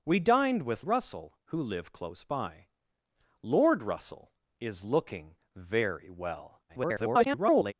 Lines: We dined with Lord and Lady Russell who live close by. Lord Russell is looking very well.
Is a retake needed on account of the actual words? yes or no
yes